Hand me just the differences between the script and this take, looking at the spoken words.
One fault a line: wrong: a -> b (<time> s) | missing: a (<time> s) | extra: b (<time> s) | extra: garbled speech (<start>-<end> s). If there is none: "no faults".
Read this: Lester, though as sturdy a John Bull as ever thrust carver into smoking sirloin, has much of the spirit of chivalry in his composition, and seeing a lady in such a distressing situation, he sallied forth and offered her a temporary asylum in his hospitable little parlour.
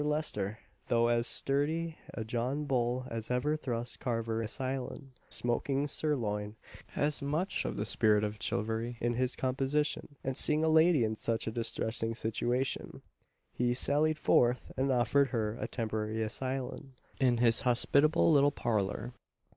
wrong: into -> asylum (4.4 s)